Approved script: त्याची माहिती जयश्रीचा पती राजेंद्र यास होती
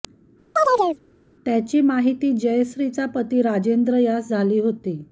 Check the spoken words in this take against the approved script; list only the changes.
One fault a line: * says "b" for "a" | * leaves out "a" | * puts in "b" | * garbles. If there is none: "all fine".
* puts in "झाली"